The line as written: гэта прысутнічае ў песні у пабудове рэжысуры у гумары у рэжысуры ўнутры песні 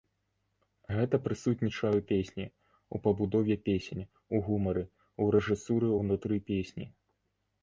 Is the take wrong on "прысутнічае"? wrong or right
right